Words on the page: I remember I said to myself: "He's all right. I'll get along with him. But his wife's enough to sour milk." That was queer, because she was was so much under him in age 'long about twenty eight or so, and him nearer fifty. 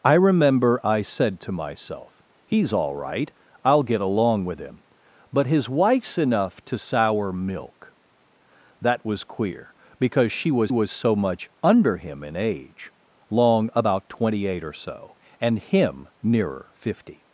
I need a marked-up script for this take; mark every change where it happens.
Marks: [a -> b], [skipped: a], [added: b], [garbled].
I remember I said to myself: "He's all right. I'll get along with him. But his wife's enough to sour milk." That was queer, because she was was so much under him in age 'long about twenty eight or so, and him nearer fifty.